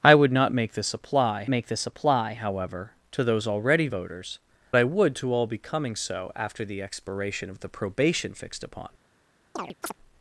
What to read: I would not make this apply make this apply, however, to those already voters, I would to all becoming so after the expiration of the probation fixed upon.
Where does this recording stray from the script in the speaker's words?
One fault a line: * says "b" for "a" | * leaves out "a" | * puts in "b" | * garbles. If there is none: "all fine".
all fine